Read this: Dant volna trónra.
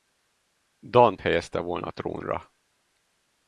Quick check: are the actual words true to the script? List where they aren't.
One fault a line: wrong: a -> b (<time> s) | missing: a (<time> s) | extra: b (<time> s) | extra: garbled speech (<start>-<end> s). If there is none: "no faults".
extra: helyezte (1.2 s)